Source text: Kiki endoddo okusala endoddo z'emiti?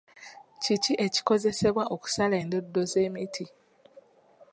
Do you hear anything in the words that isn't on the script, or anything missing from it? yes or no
yes